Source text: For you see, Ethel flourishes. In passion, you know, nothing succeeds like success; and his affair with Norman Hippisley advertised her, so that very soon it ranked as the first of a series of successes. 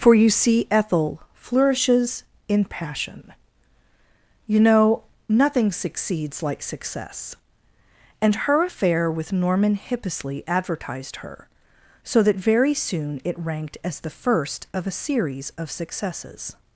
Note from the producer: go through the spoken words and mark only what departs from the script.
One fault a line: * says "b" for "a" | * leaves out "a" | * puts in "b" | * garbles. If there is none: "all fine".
* says "her" for "his"